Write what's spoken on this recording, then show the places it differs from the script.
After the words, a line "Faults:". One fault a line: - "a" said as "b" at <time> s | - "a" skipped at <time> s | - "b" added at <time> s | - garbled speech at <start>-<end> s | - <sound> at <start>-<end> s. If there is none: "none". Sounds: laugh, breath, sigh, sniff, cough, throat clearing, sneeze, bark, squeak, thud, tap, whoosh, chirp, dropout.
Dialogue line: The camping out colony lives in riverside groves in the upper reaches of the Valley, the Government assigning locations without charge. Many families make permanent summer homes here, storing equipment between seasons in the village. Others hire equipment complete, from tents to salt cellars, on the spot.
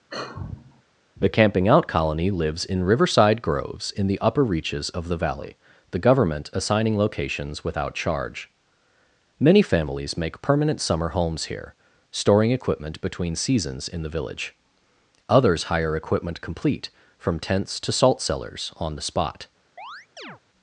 The camping out colony lives in riverside groves in the upper reaches of the Valley, the Government assigning locations without charge. Many families make permanent summer homes here, storing equipment between seasons in the village. Others hire equipment complete, from tents to salt cellars, on the spot.
Faults:
- sigh at 0.1-0.8 s
- chirp at 19.8-20.4 s